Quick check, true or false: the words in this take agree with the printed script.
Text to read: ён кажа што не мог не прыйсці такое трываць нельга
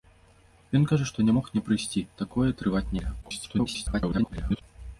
false